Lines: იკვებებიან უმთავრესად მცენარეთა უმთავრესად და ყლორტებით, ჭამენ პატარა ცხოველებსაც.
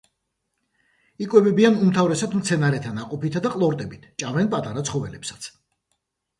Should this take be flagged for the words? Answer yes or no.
yes